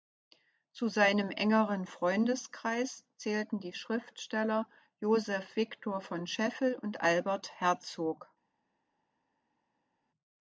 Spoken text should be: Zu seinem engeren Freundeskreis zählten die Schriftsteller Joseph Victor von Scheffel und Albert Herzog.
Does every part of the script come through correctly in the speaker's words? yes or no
yes